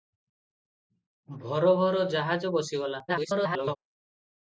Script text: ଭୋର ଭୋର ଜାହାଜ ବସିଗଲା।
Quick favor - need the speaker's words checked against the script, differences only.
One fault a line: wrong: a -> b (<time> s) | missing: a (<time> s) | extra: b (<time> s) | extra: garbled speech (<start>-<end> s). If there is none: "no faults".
extra: garbled speech (3.1-3.8 s)